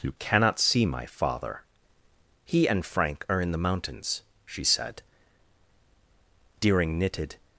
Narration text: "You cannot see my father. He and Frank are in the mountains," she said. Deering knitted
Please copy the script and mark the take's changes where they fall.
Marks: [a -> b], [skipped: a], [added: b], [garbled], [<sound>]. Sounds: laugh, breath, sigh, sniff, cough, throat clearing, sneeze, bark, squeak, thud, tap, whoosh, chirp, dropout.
"You cannot see my father. He and Frank are in the mountains," she said. Deering knitted